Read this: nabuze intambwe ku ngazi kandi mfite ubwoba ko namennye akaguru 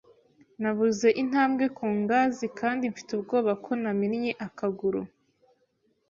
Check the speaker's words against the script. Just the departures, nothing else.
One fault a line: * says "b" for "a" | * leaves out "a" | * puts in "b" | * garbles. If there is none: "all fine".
all fine